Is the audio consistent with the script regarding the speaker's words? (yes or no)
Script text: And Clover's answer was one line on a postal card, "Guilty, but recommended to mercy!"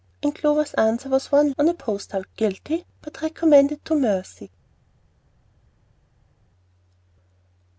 no